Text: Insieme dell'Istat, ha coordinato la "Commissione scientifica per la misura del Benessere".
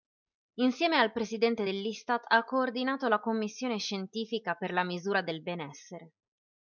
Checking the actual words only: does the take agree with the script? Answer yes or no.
no